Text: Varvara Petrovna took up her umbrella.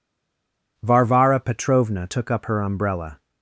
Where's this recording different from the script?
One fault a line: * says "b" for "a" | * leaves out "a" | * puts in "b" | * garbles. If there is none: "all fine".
all fine